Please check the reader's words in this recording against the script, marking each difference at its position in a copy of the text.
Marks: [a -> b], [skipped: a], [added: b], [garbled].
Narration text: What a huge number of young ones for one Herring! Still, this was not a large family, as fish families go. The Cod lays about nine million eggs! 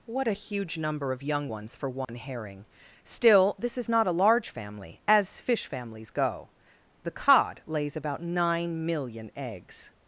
What a huge number of young ones for one Herring! Still, this [was -> is] not a large family, as fish families go. The Cod lays about nine million eggs!